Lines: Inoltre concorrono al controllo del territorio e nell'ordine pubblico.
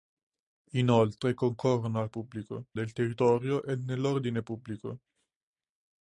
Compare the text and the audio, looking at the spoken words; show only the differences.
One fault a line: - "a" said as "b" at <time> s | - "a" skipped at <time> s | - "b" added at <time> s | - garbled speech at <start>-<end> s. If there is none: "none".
- "controllo" said as "pubblico" at 2.1 s